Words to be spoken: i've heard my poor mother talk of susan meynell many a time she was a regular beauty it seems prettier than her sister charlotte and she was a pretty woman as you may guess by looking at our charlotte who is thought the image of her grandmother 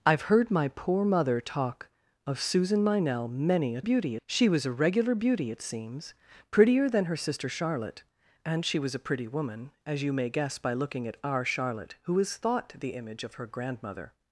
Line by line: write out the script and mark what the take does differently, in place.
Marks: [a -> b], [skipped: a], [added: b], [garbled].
i've heard my poor mother talk of susan meynell many a [time -> beauty] she was a regular beauty it seems prettier than her sister charlotte and she was a pretty woman as you may guess by looking at our charlotte who is thought the image of her grandmother